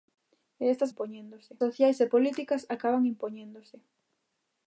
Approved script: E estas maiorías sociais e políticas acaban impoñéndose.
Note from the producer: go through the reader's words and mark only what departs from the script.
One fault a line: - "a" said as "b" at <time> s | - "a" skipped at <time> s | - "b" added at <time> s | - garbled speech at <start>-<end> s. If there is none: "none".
- "maiorías" said as "impoñéndose" at 0.9 s